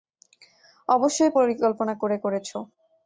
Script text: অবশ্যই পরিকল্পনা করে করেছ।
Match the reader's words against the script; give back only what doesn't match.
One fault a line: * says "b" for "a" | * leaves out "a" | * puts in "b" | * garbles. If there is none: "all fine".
all fine